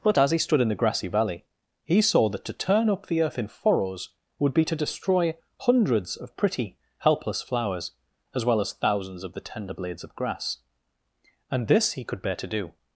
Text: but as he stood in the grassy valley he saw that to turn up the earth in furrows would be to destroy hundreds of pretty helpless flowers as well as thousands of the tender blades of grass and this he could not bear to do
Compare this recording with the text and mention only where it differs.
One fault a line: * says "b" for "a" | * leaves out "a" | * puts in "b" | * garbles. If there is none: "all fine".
* leaves out "not"